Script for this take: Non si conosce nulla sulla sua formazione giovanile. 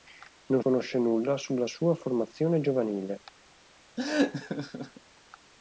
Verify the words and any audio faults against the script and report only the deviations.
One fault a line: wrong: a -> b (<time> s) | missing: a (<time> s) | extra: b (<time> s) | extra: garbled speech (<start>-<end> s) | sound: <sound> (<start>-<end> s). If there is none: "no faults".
missing: si (0.6 s)
sound: laugh (4.0-5.0 s)